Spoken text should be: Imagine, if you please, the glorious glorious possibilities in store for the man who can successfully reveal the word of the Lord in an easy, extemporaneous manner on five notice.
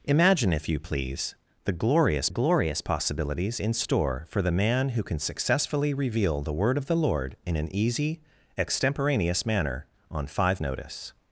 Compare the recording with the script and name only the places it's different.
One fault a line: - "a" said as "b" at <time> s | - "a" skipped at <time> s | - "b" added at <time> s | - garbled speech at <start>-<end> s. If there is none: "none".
none